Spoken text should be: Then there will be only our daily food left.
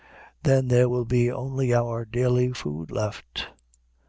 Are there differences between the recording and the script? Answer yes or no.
no